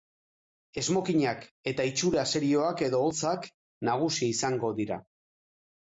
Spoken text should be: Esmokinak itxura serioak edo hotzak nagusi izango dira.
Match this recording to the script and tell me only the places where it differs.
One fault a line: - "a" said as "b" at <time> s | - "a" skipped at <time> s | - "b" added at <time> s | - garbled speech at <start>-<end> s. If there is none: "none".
- "eta" added at 1.7 s